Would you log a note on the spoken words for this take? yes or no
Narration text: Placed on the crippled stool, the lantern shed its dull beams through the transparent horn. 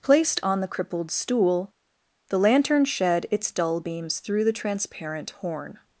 no